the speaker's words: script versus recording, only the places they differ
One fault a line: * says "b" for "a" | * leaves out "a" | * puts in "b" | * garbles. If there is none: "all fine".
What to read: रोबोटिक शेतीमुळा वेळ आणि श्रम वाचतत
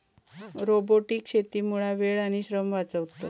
all fine